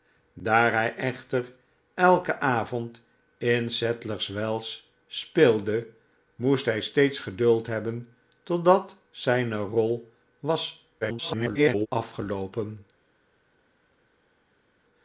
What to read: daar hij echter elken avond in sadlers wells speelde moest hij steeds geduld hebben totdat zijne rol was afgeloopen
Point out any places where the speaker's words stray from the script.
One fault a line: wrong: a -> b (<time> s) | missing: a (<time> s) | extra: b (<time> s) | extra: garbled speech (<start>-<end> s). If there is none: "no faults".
extra: garbled speech (11.0-11.9 s)